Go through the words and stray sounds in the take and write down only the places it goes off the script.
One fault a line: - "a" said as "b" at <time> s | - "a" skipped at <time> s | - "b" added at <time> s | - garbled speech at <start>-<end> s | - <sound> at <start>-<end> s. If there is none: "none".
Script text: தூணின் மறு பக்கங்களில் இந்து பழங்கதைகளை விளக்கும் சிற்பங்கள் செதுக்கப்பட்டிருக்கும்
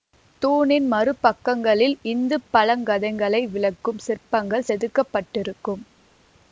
none